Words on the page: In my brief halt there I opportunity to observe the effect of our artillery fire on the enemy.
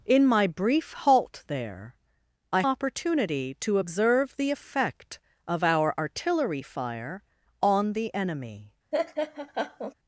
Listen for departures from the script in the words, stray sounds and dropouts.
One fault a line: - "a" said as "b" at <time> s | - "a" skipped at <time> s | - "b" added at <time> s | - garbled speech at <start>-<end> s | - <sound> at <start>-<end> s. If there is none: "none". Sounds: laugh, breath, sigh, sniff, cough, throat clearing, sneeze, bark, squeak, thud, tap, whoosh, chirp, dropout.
- laugh at 8.9-9.9 s